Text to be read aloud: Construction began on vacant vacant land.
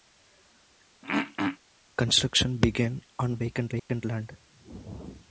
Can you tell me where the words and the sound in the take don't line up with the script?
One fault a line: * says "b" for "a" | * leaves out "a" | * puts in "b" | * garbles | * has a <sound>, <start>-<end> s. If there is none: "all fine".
* has a throat clearing, 1.0-1.6 s
* has a dropout, 3.8-3.9 s